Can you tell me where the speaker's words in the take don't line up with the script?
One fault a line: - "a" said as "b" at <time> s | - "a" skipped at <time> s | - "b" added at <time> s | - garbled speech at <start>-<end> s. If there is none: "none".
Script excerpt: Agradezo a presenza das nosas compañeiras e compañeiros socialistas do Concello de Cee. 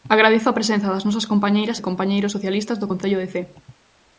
none